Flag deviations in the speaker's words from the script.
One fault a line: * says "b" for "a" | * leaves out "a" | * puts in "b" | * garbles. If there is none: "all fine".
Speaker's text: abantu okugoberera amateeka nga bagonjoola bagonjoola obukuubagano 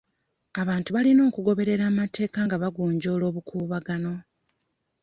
* puts in "balina"
* leaves out "bagonjoola"